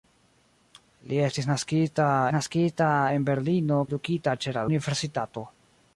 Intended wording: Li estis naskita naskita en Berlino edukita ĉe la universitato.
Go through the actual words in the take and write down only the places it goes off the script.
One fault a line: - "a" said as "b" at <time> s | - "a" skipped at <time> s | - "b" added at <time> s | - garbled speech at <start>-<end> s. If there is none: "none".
none